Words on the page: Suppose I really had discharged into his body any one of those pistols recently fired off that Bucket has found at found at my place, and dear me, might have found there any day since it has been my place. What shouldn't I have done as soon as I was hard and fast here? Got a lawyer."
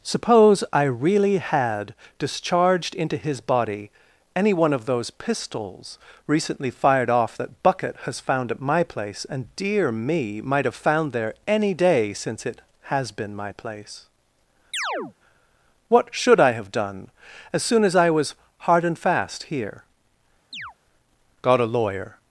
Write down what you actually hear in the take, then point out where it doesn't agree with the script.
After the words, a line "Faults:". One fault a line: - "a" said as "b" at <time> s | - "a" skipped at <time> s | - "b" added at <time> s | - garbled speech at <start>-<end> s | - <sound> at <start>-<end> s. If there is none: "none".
Suppose I really had discharged into his body any one of those pistols recently fired off that Bucket has found at my place, and dear me, might have found there any day since it has been my place. What should I have done as soon as I was hard and fast here? Got a lawyer."
Faults:
- "found at" skipped at 8.6 s
- chirp at 14.7-15.1 s
- "shouldn't" said as "should" at 16.1 s
- chirp at 20.5-20.7 s